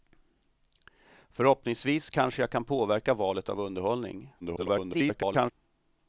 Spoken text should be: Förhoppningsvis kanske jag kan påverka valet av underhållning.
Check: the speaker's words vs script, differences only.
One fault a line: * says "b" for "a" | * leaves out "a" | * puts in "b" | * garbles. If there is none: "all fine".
* garbles